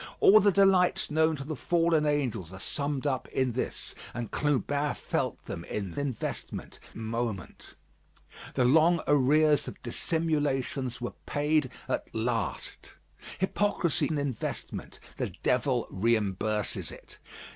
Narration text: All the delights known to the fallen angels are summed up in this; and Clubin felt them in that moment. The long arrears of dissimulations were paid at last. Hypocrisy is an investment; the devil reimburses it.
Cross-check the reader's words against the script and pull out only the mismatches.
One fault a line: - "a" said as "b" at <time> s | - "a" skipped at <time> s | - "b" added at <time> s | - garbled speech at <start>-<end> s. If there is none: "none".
- "that" said as "investment" at 6.0 s
- "is" skipped at 14.1 s